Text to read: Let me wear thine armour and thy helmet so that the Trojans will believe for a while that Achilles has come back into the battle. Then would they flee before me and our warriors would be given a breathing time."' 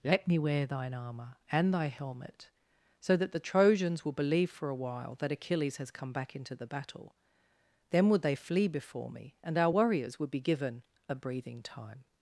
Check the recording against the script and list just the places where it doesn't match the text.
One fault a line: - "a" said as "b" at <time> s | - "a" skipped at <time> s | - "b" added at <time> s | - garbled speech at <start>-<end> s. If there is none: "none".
none